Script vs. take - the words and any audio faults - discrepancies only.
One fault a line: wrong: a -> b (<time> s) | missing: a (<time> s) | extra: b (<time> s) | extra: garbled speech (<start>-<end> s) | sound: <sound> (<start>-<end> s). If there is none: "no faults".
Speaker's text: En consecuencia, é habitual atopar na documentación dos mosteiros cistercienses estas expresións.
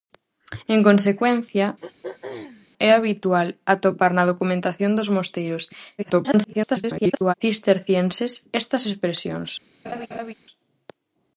sound: throat clearing (1.8-2.7 s)
extra: garbled speech (6.0-7.3 s)
sound: laugh (9.8-10.3 s)